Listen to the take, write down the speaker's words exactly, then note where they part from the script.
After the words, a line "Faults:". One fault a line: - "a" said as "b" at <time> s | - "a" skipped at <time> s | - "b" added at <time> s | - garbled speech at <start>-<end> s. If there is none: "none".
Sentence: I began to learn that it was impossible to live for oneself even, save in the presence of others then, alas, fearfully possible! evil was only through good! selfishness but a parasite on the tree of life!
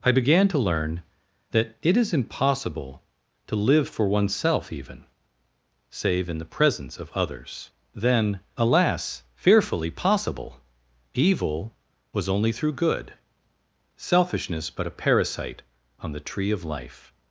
I began to learn that it is impossible to live for oneself even, save in the presence of others then, alas, fearfully possible! evil was only through good! selfishness but a parasite on the tree of life!
Faults:
- "was" said as "is" at 2.0 s